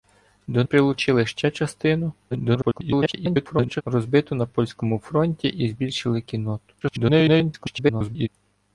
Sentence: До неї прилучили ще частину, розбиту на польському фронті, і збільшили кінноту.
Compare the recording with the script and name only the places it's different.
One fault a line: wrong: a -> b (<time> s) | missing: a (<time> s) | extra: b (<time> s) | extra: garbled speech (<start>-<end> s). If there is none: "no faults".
missing: неї (0.6 s)
extra: garbled speech (2.3-3.8 s)
extra: garbled speech (6.8-8.3 s)